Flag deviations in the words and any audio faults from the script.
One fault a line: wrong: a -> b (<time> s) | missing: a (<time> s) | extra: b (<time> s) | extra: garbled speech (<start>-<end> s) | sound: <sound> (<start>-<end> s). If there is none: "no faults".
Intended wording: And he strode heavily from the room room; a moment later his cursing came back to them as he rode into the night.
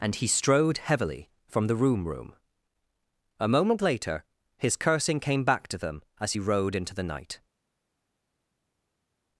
no faults